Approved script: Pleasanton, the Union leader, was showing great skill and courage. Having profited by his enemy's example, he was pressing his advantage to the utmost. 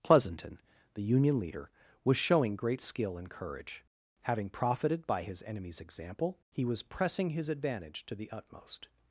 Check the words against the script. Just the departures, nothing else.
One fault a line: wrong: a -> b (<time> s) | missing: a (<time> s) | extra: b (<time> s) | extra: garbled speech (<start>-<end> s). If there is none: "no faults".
no faults